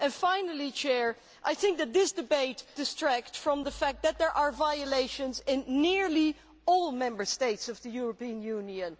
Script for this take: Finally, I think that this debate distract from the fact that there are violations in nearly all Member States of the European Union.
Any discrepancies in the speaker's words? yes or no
no